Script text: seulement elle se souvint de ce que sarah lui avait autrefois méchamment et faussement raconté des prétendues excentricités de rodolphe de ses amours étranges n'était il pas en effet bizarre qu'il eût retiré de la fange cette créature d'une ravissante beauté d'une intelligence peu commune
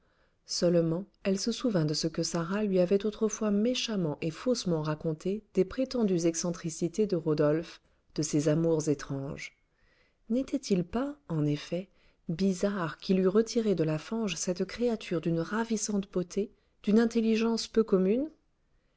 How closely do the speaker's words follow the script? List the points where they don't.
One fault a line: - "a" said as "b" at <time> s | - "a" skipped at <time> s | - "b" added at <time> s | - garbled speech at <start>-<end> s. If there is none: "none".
none